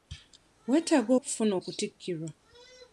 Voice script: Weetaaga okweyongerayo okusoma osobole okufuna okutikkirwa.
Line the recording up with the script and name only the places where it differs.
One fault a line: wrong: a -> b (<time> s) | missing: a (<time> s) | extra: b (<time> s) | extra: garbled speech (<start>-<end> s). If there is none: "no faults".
missing: okweyongerayo okusoma osobole (1.1 s)